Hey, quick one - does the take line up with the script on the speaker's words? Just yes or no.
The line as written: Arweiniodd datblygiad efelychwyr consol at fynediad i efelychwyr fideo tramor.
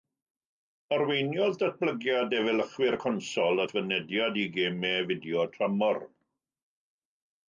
no